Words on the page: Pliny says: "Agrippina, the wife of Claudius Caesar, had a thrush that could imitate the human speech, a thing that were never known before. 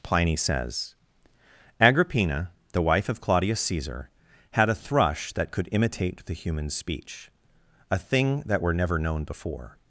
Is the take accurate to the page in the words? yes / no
yes